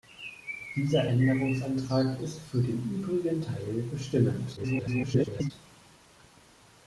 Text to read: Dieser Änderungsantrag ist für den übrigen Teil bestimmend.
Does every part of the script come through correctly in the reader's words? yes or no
no